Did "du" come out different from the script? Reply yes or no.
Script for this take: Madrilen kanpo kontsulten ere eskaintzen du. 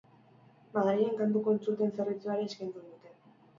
yes